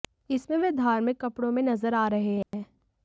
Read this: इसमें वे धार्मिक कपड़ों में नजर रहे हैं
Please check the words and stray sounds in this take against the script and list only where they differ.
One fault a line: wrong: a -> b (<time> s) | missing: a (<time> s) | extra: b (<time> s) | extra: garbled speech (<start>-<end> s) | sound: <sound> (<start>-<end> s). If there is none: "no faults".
extra: आ (1.9 s)
sound: dropout (2.4-2.5 s)